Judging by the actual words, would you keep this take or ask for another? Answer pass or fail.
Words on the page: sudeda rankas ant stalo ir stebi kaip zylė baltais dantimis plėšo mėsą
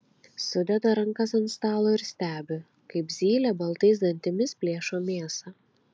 pass